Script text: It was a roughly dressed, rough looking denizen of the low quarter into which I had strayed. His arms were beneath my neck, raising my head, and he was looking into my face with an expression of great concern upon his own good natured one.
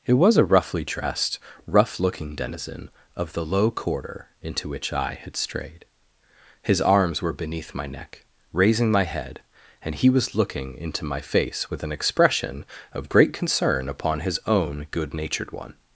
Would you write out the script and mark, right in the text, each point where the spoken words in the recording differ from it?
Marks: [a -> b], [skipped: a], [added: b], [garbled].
It was a roughly dressed, rough looking denizen of the low quarter into which I had strayed. His arms were beneath my neck, raising my head, and he was looking into my face with an expression of great concern upon his own good natured one.